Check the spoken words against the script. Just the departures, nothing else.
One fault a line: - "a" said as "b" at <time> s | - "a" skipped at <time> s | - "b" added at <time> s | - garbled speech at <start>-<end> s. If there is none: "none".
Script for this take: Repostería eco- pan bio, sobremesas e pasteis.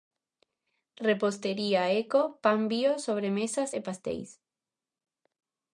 none